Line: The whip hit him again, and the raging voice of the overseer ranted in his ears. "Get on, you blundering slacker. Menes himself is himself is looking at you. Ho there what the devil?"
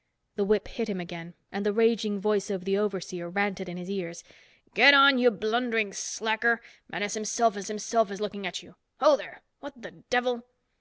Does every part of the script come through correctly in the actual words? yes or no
yes